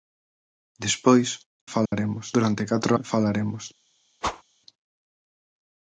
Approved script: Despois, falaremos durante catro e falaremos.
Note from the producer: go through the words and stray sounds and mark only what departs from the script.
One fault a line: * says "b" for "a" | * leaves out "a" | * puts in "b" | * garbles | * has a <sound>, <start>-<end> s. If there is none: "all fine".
* has a dropout, 1.9-1.9 s
* has a whoosh, 4.2-4.4 s